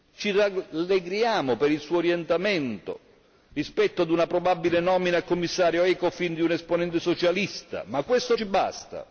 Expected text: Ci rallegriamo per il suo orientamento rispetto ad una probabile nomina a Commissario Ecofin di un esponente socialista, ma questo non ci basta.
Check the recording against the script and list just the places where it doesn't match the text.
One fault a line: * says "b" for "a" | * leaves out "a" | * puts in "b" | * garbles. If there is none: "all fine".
* leaves out "non"